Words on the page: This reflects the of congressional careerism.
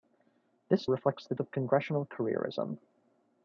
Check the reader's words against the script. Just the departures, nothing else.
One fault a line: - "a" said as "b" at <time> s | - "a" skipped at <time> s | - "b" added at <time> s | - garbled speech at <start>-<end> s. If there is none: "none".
none